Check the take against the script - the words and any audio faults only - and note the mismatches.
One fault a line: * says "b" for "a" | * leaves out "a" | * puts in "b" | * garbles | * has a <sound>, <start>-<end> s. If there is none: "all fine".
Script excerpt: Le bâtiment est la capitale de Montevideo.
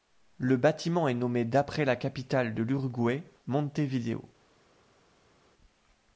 * puts in "nommé d'après"
* puts in "l'Uruguay"